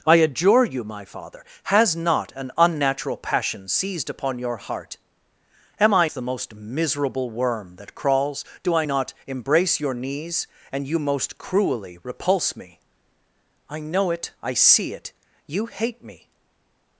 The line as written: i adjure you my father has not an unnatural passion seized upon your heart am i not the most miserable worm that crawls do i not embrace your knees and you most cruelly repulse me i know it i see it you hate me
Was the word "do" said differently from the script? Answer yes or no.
no